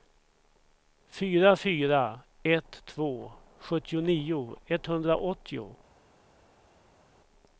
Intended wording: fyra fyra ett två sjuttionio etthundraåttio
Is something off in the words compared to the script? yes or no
no